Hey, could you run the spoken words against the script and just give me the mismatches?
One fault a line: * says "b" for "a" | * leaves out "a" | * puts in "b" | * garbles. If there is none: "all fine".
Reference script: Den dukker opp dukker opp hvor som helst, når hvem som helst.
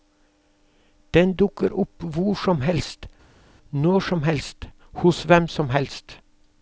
* says "hvor som helst når" for "dukker opp hvor"
* says "hos" for "når"